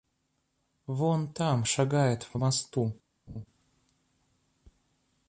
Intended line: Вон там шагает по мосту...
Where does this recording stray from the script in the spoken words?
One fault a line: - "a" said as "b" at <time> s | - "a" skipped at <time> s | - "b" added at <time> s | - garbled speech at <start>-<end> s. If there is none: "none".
none